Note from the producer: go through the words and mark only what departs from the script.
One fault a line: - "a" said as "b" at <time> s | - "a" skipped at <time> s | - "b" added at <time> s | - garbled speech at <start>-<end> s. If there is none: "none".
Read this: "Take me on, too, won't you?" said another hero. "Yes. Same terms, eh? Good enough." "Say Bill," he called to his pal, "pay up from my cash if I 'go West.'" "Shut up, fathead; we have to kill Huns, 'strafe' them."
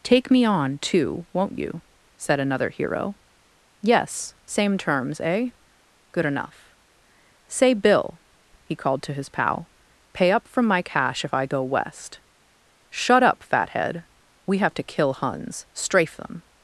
none